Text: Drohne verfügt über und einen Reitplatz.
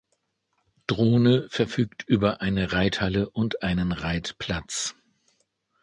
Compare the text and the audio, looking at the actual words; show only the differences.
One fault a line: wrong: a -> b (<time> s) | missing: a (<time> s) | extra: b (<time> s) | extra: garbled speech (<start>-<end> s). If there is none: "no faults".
extra: eine Reithalle (2.4 s)